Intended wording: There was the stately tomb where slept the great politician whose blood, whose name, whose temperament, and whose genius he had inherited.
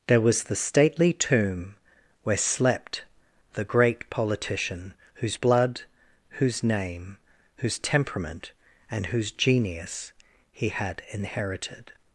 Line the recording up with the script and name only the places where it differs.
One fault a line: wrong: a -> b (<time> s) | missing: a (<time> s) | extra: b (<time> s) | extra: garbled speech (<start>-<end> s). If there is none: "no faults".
no faults